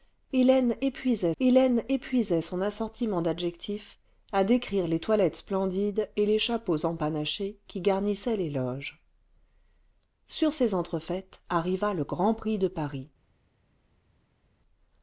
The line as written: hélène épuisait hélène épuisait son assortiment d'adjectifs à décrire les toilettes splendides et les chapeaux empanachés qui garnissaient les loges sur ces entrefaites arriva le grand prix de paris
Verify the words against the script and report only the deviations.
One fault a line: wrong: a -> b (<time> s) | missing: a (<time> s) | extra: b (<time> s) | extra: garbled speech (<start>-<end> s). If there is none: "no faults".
no faults